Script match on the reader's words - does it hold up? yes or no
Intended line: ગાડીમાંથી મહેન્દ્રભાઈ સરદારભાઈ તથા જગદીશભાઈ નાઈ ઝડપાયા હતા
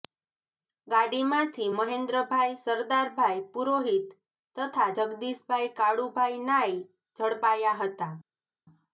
no